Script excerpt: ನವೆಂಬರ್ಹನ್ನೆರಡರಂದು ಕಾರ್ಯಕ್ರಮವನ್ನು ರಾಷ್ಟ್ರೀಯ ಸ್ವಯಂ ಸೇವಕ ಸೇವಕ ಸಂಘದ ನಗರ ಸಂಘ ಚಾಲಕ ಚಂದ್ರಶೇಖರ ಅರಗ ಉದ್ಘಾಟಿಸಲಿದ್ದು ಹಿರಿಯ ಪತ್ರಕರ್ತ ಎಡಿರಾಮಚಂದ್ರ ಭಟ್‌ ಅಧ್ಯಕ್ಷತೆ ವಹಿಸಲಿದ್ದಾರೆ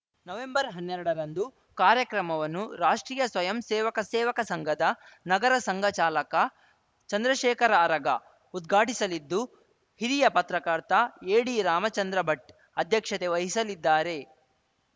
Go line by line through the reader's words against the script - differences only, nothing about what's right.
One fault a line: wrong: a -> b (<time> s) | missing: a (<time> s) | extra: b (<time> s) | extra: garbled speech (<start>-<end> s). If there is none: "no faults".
no faults